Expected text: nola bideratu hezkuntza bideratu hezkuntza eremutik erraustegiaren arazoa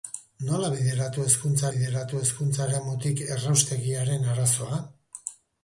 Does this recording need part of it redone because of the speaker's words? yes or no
no